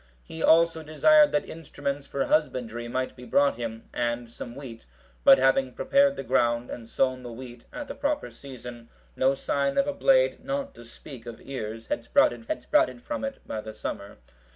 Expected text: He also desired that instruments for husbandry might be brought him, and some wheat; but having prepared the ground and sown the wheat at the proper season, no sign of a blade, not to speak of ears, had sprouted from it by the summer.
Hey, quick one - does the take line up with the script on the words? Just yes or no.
no